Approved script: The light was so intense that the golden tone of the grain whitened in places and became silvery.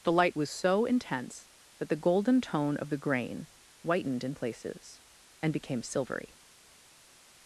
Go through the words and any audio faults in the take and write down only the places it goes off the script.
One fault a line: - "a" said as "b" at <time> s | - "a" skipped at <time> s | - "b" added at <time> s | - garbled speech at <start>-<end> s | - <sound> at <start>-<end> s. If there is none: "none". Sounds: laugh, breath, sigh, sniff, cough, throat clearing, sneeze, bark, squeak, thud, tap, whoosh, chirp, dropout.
none